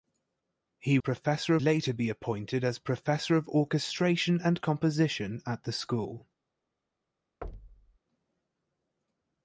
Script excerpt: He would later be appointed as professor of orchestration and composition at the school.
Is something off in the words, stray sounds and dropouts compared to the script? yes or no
yes